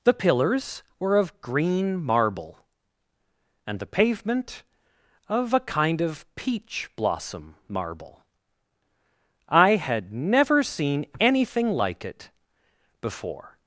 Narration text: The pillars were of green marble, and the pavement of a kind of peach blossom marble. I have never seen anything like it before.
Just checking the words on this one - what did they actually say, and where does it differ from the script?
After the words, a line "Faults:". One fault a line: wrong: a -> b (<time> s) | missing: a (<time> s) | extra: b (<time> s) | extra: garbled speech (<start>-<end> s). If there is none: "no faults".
The pillars were of green marble, and the pavement of a kind of peach blossom marble. I had never seen anything like it before.
Faults:
wrong: have -> had (9.8 s)